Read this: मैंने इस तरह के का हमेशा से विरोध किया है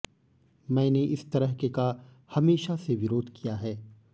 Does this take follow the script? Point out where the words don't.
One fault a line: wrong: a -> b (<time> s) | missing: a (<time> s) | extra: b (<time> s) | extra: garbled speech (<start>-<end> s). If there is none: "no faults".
no faults